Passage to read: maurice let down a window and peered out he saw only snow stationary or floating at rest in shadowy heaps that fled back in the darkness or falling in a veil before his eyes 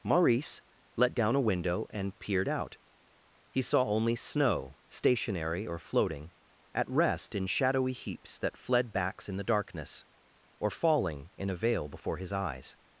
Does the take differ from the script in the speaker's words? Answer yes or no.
yes